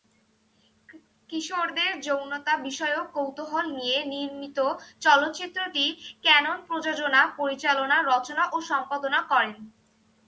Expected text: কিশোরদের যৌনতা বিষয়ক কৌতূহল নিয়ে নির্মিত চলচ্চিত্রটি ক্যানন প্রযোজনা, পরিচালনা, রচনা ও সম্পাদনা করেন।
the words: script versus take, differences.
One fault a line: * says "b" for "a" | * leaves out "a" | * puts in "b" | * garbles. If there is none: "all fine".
all fine